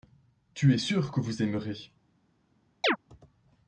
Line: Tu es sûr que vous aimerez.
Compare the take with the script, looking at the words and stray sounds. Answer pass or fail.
fail